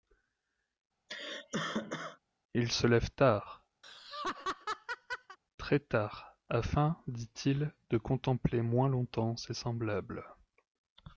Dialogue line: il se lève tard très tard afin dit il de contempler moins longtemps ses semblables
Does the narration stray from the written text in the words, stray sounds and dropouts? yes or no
yes